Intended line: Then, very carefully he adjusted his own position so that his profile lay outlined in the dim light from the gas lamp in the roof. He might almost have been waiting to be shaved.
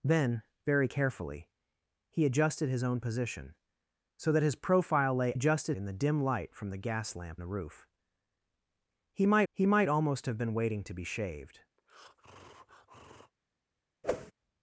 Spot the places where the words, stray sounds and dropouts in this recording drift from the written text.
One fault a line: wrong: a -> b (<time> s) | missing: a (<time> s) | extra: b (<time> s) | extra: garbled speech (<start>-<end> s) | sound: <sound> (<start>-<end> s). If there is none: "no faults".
wrong: outlined -> adjusted (5.3 s)
missing: in (7.4 s)
extra: he might (9.5 s)
sound: breath (11.8-13.3 s)
sound: whoosh (14.0-14.3 s)